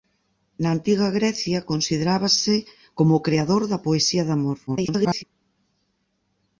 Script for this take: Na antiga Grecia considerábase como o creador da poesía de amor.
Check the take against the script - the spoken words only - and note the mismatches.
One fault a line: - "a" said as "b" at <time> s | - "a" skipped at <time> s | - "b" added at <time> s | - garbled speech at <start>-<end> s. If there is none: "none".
- garbled speech at 4.7-5.2 s